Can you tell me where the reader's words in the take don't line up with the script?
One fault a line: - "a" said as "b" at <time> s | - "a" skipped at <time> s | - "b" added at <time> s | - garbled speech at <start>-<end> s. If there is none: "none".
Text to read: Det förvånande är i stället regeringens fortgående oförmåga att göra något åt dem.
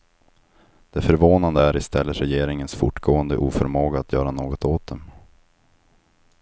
none